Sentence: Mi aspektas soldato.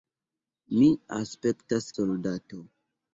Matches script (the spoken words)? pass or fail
pass